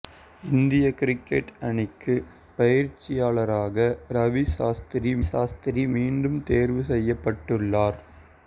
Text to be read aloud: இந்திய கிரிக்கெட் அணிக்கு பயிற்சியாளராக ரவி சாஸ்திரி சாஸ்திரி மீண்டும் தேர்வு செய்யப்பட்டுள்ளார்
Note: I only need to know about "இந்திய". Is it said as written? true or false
true